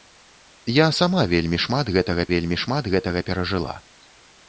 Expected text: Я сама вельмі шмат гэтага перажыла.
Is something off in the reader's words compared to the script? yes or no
yes